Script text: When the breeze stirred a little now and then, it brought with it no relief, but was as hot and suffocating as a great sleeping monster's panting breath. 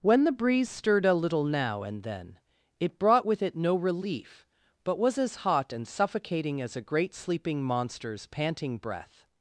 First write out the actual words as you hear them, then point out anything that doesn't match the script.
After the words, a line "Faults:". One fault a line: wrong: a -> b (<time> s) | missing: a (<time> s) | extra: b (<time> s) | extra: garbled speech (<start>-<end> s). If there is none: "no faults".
When the breeze stirred a little now and then, it brought with it no relief, but was as hot and suffocating as a great sleeping monster's panting breath.
Faults:
no faults